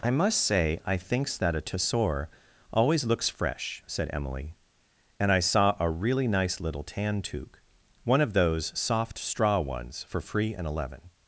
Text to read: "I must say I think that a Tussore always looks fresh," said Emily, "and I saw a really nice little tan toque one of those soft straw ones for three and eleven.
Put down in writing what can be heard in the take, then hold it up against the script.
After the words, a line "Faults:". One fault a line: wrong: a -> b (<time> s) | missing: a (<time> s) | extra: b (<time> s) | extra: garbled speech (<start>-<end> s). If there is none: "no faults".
"I must say I thinks that a Tussore always looks fresh," said Emily, "and I saw a really nice little tan toque one of those soft straw ones for free and eleven.
Faults:
wrong: think -> thinks (1.0 s)
wrong: three -> free (10.2 s)